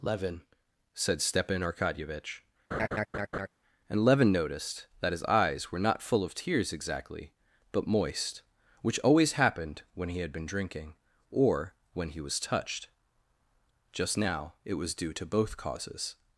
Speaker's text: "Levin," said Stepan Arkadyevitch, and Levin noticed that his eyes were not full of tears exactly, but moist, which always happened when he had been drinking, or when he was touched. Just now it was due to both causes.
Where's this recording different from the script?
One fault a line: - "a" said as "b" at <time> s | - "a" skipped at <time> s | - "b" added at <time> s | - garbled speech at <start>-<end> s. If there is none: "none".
none